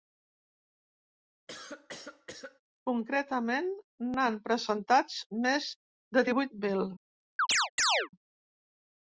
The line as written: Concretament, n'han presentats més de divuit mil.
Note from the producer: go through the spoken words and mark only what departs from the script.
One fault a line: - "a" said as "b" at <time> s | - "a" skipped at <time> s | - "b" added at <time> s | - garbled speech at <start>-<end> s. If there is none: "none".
none